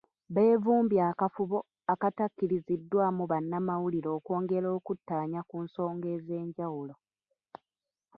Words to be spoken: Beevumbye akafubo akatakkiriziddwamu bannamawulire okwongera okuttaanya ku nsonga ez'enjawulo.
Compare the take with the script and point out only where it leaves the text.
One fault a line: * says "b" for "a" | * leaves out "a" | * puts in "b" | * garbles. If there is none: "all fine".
all fine